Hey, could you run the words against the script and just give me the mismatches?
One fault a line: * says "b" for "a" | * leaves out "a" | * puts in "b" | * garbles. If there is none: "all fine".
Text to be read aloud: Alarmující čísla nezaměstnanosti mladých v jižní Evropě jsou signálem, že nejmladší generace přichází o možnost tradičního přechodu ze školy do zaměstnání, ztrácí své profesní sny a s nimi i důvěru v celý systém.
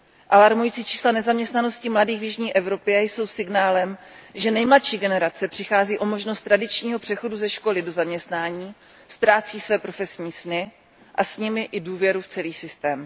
all fine